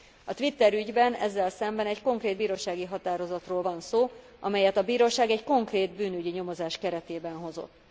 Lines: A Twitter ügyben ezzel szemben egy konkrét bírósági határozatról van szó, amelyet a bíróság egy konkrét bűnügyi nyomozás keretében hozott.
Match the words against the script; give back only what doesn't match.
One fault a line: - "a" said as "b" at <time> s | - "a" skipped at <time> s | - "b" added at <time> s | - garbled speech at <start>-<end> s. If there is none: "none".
none